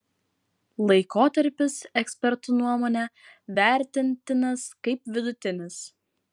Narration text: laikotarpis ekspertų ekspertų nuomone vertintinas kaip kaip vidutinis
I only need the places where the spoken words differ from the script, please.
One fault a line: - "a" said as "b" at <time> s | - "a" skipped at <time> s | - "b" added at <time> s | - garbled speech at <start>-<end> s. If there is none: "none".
- "ekspertų" skipped at 2.6 s
- "kaip" skipped at 5.1 s